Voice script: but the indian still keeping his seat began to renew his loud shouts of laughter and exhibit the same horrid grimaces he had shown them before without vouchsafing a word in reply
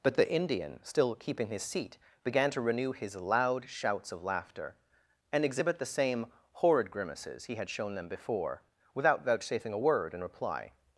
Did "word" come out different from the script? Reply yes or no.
no